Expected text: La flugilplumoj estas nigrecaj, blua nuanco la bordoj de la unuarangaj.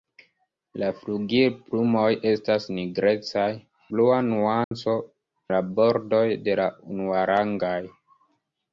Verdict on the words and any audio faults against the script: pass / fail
fail